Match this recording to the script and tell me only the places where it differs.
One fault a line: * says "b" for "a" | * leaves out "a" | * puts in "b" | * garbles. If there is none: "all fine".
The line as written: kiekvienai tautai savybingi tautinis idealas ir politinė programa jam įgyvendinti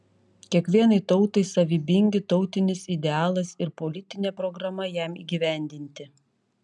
all fine